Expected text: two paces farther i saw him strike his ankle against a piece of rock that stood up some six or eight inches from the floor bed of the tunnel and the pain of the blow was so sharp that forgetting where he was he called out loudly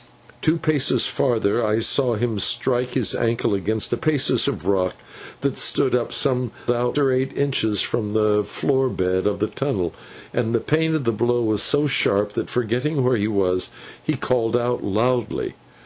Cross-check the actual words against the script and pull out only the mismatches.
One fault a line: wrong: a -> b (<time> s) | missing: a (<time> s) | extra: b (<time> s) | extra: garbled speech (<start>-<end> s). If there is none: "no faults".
wrong: piece -> paces (4.0 s)
wrong: six -> out (6.7 s)